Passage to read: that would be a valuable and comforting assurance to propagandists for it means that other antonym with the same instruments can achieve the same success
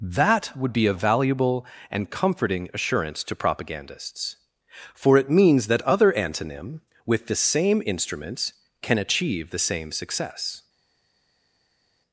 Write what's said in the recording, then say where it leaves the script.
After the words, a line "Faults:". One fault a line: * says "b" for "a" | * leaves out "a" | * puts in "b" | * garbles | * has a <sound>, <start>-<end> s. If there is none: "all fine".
that would be a valuable and comforting assurance to propagandists for it means that other antonym with the same instruments can achieve the same success
Faults:
all fine